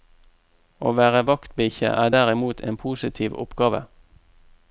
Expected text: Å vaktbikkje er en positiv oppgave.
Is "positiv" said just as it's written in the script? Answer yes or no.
yes